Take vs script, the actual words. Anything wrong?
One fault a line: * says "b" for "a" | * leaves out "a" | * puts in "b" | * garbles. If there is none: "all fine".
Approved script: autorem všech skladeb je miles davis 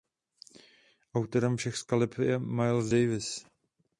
all fine